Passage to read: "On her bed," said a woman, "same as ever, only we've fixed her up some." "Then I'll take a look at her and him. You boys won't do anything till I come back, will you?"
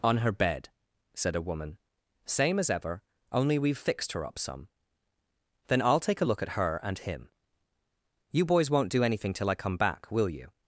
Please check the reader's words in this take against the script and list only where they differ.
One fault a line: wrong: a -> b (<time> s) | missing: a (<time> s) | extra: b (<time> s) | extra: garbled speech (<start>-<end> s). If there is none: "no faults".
no faults